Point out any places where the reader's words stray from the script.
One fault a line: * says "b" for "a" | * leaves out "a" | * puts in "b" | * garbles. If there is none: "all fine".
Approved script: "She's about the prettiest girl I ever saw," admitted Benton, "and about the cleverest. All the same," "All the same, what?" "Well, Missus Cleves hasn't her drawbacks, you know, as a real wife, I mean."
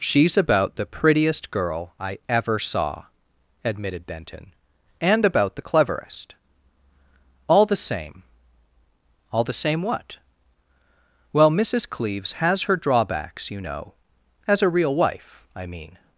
* says "has" for "hasn't"